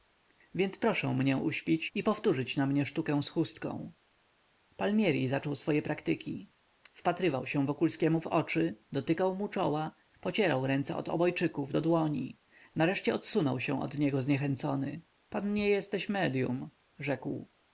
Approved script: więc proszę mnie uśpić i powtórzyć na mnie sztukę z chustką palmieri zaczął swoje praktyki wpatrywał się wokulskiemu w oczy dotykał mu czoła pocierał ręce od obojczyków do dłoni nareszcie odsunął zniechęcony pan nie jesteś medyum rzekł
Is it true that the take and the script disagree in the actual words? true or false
true